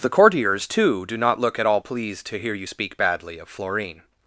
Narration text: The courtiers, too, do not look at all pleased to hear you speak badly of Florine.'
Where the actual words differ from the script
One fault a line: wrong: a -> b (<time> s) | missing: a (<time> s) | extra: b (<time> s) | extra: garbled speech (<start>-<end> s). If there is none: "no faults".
no faults